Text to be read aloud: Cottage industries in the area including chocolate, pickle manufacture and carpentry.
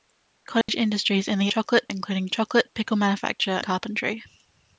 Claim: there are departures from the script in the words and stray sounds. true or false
true